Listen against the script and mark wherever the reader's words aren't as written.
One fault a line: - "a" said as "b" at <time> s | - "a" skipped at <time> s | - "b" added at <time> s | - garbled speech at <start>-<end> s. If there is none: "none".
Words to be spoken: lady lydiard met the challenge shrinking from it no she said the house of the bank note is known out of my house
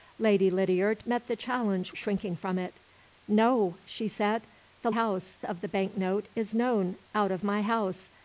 none